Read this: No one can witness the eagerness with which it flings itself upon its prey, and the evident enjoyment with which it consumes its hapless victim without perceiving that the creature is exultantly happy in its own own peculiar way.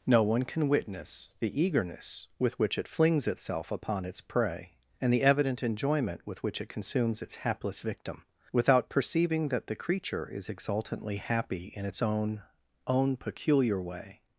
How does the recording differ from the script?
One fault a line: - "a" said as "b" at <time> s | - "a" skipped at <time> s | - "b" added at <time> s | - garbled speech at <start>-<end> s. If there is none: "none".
none